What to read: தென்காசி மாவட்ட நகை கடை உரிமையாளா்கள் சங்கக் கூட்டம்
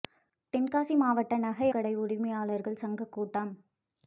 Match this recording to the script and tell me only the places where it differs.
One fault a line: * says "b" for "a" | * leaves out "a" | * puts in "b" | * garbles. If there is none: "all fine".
all fine